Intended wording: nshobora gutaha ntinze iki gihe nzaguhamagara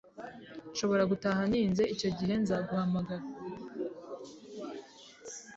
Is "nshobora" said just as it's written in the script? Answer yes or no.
yes